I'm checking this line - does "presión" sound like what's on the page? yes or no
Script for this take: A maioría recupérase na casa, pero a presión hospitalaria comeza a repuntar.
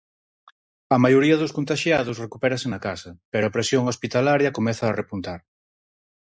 yes